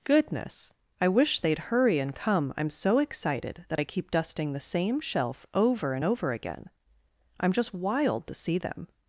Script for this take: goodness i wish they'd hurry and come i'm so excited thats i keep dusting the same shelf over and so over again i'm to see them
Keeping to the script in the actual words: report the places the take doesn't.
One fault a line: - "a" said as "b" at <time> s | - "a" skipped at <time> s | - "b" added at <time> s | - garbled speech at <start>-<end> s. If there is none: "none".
- "thats" said as "that" at 3.7 s
- "so" skipped at 6.0 s
- "just wild" added at 7.5 s